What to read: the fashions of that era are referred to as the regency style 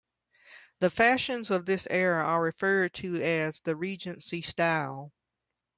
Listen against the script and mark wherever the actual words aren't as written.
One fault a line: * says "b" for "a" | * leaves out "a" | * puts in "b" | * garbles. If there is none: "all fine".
* says "this" for "that"